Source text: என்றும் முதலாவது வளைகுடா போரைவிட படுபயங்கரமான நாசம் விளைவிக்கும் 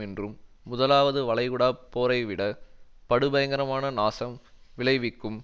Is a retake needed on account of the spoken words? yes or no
no